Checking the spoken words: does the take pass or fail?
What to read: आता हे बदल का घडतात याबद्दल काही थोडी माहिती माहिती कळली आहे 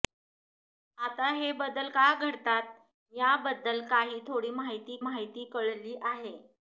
pass